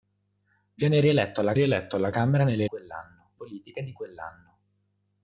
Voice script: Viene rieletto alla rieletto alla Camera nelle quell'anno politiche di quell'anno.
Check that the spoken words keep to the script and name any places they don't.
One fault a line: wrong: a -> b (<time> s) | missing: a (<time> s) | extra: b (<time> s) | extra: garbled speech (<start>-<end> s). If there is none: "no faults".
no faults